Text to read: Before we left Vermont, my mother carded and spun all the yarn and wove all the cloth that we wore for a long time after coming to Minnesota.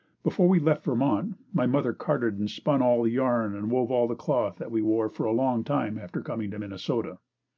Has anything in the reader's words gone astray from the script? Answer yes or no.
no